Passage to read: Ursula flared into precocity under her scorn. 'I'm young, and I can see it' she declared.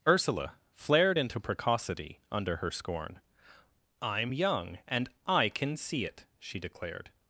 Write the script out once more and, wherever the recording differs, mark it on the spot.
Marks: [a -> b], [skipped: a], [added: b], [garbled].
Ursula flared into precocity under her scorn. 'I'm young, and I can see it' she declared.